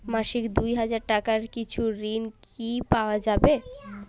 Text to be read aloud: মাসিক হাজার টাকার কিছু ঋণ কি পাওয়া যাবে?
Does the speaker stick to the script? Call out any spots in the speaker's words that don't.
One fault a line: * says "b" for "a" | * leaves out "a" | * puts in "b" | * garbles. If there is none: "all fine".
* puts in "দুই"